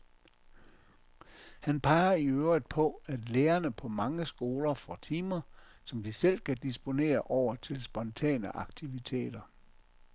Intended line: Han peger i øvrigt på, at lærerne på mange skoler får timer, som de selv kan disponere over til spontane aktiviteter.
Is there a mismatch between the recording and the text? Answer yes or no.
no